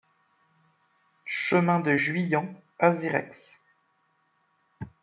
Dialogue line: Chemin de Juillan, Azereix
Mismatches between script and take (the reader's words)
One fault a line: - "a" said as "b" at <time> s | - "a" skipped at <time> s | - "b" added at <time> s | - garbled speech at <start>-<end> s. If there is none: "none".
none